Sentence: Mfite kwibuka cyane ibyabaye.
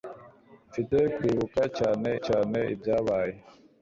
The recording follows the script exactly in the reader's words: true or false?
false